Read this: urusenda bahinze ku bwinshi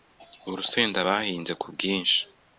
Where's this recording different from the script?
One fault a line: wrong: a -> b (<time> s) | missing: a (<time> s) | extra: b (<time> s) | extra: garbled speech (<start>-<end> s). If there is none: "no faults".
no faults